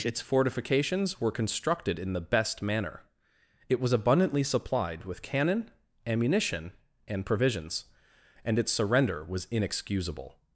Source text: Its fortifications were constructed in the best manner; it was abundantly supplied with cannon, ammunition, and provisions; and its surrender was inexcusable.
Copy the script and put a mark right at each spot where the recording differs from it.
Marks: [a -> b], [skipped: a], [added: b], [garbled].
Its fortifications were constructed in the best manner; it was abundantly supplied with cannon, ammunition, and provisions; and its surrender was inexcusable.